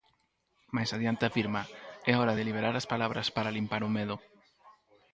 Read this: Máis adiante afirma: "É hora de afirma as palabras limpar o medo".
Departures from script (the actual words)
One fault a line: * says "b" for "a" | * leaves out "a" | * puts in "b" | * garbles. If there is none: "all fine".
* says "liberar" for "afirma"
* puts in "para"